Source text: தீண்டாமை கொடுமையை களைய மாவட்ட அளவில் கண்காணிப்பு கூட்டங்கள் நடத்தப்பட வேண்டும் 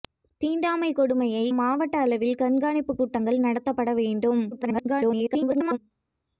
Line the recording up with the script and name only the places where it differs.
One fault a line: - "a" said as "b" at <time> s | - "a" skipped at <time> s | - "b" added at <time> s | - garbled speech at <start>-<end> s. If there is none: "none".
- "களைய" skipped at 1.4 s
- garbled speech at 4.5-5.8 s